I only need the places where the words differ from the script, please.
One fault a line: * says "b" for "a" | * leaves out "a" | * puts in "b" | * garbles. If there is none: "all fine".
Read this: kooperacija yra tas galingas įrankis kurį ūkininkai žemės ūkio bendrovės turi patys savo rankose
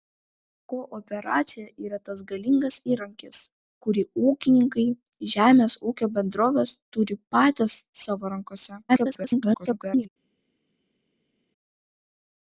* garbles